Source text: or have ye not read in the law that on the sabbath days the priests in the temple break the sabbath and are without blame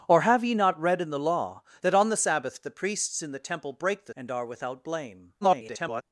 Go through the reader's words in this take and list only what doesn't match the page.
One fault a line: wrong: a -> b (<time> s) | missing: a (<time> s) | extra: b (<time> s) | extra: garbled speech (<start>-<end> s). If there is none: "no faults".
missing: days (2.6 s)
missing: sabbath (4.1 s)
extra: garbled speech (5.4-6.0 s)